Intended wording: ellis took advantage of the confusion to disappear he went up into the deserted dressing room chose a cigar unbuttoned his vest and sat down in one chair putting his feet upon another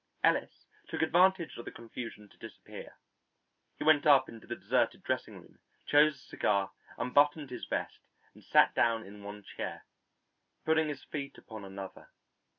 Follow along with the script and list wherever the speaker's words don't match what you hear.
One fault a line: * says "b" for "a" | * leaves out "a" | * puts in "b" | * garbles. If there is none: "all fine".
all fine